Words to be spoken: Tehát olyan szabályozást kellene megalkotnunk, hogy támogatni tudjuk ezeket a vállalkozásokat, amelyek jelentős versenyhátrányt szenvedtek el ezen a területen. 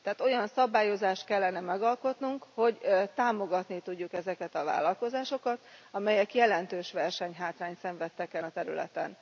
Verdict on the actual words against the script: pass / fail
fail